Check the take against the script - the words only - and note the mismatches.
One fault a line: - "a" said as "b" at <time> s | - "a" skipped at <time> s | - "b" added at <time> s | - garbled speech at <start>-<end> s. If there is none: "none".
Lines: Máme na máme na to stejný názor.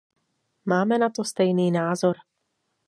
- "máme na" skipped at 1.1 s